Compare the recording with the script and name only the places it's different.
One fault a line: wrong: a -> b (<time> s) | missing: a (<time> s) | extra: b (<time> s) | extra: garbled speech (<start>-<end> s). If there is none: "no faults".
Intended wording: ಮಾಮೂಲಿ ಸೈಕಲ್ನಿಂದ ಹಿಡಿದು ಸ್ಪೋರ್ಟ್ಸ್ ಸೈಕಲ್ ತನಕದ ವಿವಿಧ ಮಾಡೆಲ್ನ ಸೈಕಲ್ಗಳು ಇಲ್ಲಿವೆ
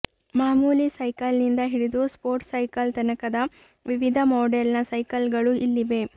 no faults